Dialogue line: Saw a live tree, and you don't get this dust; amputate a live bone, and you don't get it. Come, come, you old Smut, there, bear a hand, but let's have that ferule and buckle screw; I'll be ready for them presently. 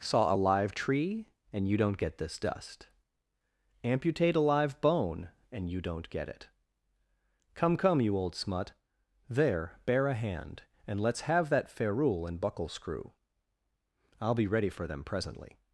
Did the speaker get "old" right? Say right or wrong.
right